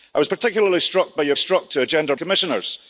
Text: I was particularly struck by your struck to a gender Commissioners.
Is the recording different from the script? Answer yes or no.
no